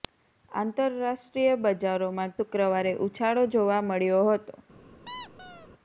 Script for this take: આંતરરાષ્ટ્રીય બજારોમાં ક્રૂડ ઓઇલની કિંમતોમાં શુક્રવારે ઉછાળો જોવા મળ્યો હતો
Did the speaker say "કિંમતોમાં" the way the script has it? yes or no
no